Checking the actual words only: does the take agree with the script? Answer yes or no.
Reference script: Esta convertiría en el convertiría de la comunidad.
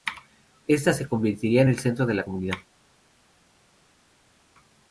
no